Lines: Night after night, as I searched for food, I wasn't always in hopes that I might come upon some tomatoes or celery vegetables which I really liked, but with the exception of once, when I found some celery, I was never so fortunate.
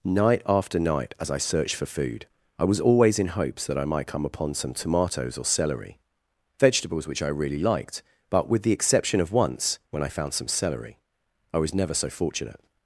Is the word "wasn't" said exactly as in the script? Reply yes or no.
no